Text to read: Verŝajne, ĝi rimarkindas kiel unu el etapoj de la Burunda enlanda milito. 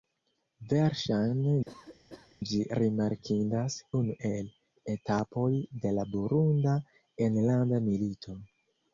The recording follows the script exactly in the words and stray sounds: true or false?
false